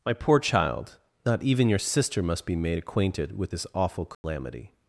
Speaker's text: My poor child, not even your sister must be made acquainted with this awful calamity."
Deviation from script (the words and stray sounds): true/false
true